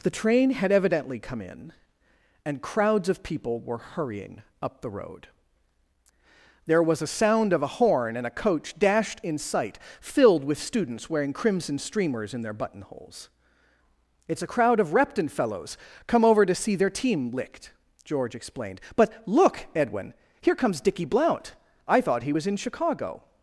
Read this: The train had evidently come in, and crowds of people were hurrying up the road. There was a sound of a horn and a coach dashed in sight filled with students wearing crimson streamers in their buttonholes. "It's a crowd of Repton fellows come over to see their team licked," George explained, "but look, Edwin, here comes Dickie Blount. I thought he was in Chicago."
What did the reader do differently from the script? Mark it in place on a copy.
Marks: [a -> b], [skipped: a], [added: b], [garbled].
The train had evidently come in, and crowds of people were hurrying up the road. There was a sound of a horn and a coach dashed in sight filled with students wearing crimson streamers in their buttonholes. "It's a crowd of Repton fellows come over to see their team licked," George explained, "but look, Edwin, here comes Dickie Blount. I thought he was in Chicago."